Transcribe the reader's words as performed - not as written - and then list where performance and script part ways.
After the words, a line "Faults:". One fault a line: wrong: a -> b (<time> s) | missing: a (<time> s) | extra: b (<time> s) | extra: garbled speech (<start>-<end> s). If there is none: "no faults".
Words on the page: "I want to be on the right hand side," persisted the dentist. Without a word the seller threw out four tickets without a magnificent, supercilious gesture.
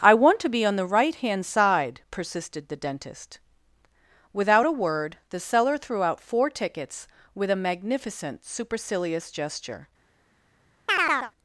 "I want to be on the right hand side," persisted the dentist. Without a word the seller threw out four tickets with a magnificent, supercilious gesture.
Faults:
wrong: without -> with (7.3 s)